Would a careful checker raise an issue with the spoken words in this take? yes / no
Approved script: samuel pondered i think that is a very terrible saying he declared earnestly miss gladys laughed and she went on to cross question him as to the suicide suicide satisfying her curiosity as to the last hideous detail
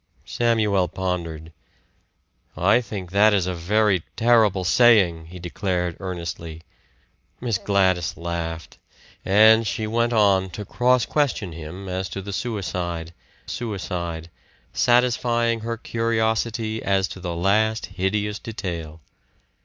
no